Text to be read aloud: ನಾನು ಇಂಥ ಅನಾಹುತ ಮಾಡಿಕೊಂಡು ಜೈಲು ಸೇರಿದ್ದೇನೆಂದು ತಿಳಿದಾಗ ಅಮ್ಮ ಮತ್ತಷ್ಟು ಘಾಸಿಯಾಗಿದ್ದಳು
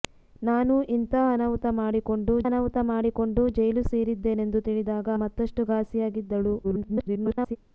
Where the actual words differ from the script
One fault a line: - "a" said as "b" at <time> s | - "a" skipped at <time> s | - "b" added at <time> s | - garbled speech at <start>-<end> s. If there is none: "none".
- "ಅನಾಹುತ ಮಾಡಿಕೊಂಡು" added at 2.5 s
- "ಅಮ್ಮ" skipped at 5.1 s
- garbled speech at 6.6-7.6 s